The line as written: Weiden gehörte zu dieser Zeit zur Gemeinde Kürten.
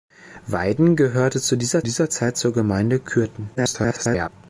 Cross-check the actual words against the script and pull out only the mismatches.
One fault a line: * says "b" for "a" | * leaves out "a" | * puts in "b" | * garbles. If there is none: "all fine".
* puts in "dieser"
* garbles